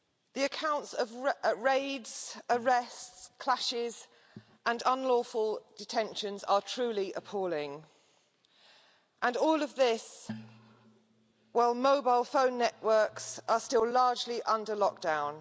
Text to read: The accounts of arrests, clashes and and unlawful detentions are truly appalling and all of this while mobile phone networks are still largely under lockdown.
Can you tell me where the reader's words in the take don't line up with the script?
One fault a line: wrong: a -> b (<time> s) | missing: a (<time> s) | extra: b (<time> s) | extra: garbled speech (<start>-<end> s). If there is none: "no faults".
extra: raids (1.6 s)
missing: and (4.8 s)